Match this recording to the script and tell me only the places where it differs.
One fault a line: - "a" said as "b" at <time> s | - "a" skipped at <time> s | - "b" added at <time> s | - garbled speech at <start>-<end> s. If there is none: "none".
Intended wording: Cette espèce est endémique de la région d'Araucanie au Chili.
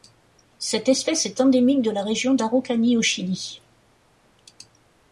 none